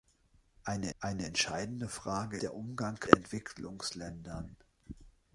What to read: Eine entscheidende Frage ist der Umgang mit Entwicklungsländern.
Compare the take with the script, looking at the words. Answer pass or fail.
fail